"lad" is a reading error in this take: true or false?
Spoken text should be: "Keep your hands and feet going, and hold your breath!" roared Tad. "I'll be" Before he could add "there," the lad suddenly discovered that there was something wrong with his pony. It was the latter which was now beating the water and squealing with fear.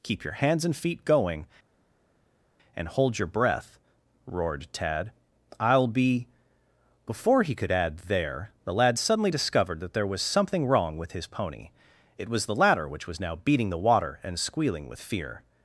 false